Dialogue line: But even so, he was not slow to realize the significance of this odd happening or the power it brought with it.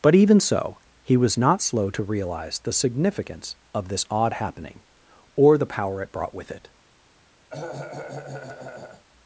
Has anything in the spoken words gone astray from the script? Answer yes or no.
no